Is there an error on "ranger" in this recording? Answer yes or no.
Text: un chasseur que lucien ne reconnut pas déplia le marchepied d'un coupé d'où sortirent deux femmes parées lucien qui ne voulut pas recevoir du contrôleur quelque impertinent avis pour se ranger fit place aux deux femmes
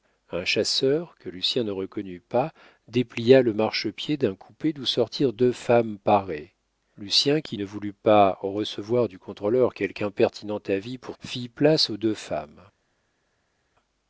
yes